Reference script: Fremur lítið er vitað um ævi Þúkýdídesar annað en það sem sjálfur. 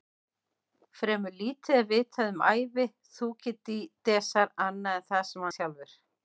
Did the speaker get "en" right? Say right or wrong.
right